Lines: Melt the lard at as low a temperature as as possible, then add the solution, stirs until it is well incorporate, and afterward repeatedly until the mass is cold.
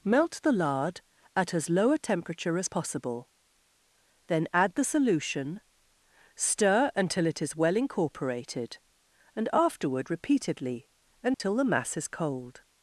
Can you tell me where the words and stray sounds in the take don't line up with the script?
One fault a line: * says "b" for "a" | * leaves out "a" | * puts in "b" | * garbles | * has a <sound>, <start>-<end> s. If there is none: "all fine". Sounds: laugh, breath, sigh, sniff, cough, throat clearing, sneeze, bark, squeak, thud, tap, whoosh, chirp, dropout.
* leaves out "as"
* says "stir" for "stirs"
* says "incorporated" for "incorporate"
* has a dropout, 11.3-11.4 s